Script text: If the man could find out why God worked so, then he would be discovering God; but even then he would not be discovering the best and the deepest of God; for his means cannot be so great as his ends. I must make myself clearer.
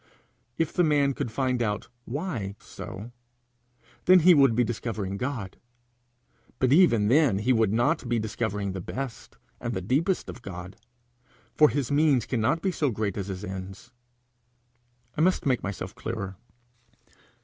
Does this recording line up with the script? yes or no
no